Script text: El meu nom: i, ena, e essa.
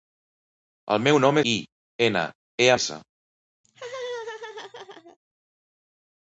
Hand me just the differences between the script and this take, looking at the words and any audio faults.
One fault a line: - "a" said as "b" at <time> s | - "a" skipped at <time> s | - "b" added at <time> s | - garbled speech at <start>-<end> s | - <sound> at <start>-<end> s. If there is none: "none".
- laugh at 3.6-5.2 s